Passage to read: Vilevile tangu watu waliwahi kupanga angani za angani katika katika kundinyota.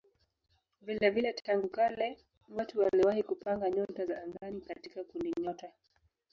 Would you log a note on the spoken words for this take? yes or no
yes